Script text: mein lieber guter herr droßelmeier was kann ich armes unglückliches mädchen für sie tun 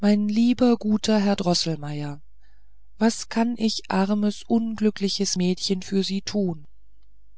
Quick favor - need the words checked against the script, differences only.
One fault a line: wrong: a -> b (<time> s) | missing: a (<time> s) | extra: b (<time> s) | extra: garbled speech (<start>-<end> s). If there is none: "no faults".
no faults